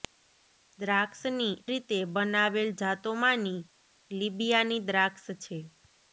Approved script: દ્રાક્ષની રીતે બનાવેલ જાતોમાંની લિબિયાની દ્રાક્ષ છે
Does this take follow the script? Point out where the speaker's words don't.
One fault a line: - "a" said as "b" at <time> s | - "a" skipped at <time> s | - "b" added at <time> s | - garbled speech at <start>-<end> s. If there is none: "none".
none